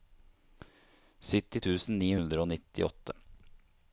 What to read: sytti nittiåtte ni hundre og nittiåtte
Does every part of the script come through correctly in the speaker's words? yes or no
no